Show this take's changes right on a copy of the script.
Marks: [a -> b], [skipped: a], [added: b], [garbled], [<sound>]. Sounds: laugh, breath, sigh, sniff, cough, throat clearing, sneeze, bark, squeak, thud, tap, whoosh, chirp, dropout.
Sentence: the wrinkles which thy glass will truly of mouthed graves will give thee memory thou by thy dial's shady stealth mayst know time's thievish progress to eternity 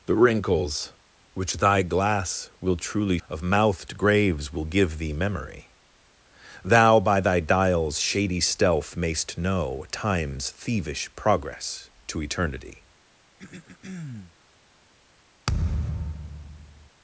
the wrinkles which thy glass will truly of mouthed graves will give thee memory thou by thy dial's shady stealth mayst know time's thievish progress to eternity [throat clearing] [thud]